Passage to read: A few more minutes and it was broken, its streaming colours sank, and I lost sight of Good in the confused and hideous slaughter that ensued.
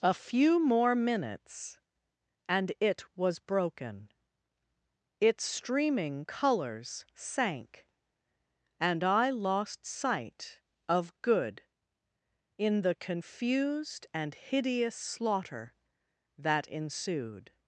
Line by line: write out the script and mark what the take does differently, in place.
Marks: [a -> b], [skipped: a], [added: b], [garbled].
A few more minutes and it was broken, its streaming colours sank, and I lost sight of Good in the confused and hideous slaughter that ensued.